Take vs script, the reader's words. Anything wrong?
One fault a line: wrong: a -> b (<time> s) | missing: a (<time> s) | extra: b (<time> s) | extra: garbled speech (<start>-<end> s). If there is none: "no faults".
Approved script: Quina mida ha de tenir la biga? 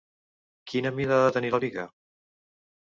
no faults